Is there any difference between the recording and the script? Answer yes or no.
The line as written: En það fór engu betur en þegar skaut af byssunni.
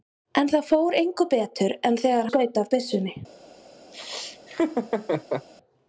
no